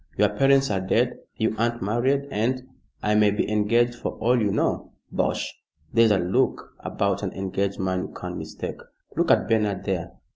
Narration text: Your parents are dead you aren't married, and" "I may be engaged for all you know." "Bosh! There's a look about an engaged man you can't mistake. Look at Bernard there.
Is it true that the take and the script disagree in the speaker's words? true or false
false